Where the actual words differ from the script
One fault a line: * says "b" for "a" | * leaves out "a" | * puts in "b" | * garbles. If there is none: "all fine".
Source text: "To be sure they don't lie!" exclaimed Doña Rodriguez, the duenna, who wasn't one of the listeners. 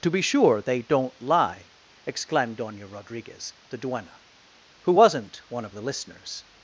all fine